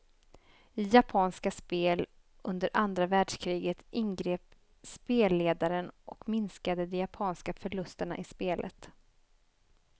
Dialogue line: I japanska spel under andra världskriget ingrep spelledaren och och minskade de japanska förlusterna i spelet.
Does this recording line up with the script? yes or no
no